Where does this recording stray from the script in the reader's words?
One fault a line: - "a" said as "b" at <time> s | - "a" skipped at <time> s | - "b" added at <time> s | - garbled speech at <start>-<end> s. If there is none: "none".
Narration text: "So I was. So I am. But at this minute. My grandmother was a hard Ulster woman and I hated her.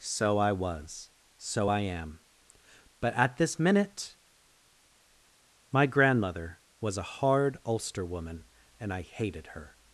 none